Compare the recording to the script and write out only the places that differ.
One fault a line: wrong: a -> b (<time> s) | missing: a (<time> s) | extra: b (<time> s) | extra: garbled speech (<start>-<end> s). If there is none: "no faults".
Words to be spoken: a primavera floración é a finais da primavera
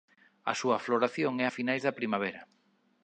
wrong: primavera -> súa (0.6 s)